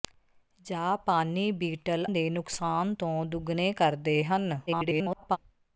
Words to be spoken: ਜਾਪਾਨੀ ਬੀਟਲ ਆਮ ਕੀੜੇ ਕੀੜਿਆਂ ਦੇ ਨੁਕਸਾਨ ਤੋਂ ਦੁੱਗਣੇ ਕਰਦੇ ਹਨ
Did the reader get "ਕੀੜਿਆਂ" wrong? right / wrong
wrong